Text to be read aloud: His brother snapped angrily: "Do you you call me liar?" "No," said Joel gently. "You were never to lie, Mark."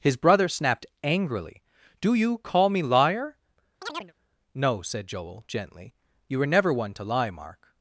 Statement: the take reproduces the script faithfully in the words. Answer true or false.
false